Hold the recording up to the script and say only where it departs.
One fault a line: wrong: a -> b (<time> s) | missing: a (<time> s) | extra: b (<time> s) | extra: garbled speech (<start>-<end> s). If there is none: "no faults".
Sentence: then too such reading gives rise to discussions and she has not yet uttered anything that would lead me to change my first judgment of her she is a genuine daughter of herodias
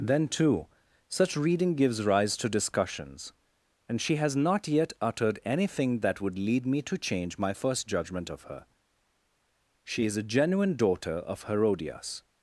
no faults